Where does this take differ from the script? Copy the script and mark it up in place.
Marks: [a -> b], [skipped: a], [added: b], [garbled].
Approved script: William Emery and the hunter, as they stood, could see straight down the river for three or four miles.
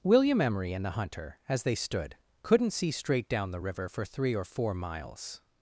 William Emery and the hunter, as they stood, [could -> couldn't] see straight down the river for three or four miles.